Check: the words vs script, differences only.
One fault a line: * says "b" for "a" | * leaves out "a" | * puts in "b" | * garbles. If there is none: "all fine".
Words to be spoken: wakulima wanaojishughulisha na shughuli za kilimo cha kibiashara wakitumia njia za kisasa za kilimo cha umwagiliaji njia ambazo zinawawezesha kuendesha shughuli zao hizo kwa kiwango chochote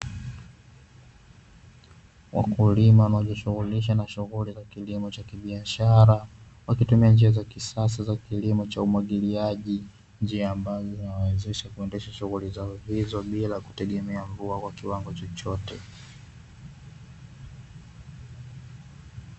* puts in "bila kutegemea mvua"